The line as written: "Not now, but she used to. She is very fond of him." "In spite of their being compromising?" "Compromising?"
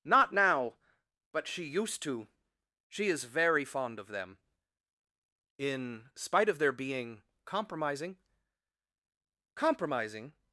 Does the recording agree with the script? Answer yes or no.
no